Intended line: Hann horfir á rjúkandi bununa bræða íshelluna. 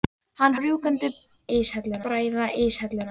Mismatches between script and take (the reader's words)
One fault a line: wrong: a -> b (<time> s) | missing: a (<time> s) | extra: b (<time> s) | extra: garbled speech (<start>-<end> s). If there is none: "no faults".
missing: horfir (0.6 s)
wrong: bununa -> íshelluna (1.6 s)